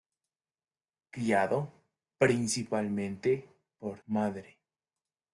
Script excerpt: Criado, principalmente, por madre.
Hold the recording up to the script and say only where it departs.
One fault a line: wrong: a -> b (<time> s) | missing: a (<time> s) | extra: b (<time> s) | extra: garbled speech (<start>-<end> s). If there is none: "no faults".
no faults